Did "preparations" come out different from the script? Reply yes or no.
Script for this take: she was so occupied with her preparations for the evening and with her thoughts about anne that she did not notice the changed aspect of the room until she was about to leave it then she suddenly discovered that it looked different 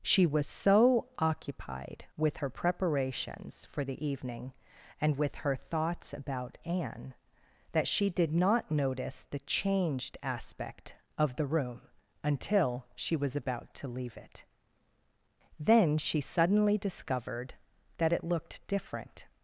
no